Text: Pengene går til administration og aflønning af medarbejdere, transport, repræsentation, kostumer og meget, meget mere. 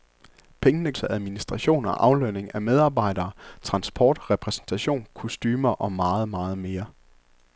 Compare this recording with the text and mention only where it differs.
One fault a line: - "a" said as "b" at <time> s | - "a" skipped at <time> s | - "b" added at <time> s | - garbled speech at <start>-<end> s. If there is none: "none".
- "går" skipped at 0.9 s